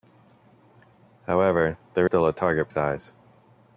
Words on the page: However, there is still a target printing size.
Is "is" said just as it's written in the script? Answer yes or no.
no